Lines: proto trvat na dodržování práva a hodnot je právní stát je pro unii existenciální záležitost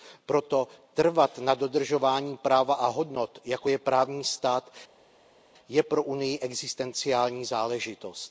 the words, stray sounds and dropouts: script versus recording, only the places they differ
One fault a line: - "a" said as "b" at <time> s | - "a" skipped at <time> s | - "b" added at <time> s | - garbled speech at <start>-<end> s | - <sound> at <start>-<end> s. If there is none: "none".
- "jako" added at 3.5 s